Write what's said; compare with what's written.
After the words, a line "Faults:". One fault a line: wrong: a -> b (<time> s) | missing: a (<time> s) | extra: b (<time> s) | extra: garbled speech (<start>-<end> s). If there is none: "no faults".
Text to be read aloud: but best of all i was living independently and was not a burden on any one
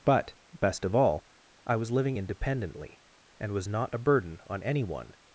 but best of all i was living independently and was not a burden on any one
Faults:
no faults